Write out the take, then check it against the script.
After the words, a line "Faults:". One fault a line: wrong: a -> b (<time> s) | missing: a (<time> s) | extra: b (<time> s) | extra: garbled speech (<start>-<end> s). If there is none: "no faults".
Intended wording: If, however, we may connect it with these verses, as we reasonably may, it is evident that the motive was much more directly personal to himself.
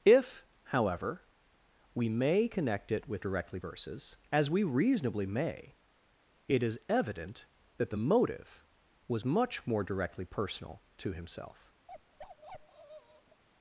If, however, we may connect it with directly verses, as we reasonably may, it is evident that the motive was much more directly personal to himself.
Faults:
wrong: these -> directly (3.2 s)